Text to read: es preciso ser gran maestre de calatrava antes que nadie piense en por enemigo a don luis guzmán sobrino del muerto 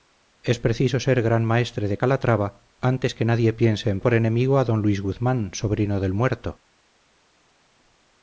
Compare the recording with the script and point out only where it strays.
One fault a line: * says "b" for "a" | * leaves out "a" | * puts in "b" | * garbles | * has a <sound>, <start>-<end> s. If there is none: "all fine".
all fine